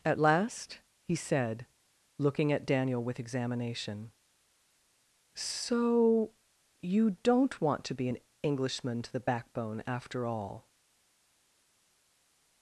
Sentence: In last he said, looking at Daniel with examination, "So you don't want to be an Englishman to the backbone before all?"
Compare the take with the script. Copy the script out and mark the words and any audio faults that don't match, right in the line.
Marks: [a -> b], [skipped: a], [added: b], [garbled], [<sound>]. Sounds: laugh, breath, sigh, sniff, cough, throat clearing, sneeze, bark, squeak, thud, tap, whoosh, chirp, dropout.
[In -> At] last he said, looking at Daniel with examination, "So you don't want to be an Englishman to the backbone [before -> after] all?"